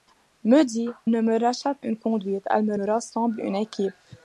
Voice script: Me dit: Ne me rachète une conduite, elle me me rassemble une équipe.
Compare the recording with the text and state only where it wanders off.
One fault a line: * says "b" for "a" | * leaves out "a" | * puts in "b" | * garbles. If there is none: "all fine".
all fine